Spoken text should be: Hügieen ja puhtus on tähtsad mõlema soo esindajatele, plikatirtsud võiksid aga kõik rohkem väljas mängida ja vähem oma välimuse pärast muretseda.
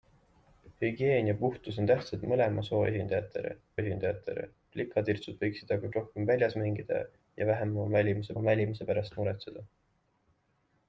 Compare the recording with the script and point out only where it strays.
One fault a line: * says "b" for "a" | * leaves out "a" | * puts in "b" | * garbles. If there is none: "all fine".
* puts in "esindajatele"
* leaves out "kõik"
* puts in "oma välimuse"